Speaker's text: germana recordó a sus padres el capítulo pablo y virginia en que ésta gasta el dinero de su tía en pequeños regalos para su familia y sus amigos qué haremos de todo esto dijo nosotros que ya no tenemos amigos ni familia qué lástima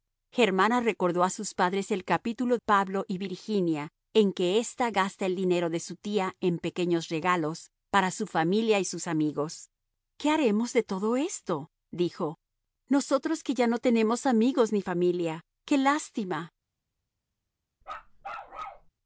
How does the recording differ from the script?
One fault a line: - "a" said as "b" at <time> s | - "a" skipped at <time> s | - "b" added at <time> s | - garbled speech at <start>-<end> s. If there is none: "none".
none